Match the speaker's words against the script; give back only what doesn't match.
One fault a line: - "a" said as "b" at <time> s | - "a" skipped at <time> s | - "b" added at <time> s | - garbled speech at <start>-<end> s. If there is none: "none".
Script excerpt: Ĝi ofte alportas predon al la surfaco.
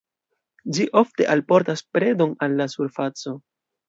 none